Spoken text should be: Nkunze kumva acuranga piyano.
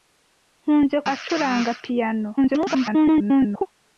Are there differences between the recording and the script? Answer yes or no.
yes